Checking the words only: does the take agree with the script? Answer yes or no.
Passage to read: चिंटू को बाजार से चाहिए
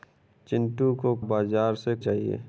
yes